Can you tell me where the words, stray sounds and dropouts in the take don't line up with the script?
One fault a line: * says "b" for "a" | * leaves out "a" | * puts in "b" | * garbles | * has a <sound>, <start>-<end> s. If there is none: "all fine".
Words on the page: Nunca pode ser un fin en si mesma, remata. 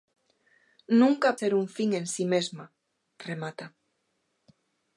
* leaves out "pode"